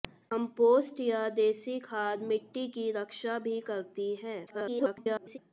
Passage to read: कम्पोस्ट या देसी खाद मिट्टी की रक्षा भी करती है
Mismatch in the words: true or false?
true